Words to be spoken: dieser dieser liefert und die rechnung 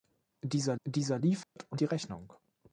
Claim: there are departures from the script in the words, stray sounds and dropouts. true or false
true